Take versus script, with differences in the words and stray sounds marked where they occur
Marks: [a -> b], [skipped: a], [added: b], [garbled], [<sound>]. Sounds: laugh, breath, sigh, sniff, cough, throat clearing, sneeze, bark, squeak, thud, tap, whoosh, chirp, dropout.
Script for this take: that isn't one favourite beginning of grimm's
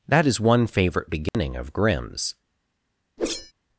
that [isn't -> is] one favourite beginning [dropout] of grimm's [whoosh]